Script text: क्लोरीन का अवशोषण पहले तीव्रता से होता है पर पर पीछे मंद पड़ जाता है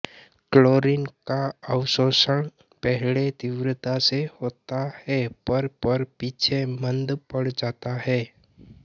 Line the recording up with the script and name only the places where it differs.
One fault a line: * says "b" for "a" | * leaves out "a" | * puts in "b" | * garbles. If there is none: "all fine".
all fine